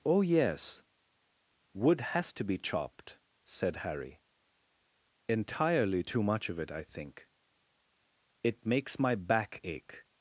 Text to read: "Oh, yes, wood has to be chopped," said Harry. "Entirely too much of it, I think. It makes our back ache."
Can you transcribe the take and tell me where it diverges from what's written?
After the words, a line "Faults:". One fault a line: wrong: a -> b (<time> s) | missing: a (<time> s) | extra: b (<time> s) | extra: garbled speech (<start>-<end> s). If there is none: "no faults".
"Oh, yes, wood has to be chopped," said Harry. "Entirely too much of it, I think. It makes my back ache."
Faults:
wrong: our -> my (9.0 s)